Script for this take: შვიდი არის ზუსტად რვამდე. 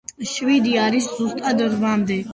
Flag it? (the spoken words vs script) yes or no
no